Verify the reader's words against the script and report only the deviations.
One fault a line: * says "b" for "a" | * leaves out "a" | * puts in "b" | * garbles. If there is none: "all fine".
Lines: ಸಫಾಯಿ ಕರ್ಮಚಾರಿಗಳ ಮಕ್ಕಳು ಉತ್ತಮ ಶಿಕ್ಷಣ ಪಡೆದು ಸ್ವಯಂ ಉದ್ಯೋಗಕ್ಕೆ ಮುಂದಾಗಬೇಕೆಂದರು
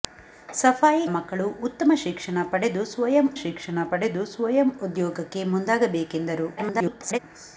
* leaves out "ಕರ್ಮಚಾರಿಗಳ"
* puts in "ಶಿಕ್ಷಣ ಪಡೆದು ಸ್ವಯಂ"
* garbles